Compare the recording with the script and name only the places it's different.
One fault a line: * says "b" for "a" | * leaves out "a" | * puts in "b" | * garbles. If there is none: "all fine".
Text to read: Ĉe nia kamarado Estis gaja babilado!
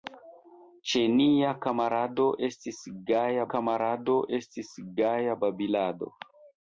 * puts in "kamarado Estis gaja"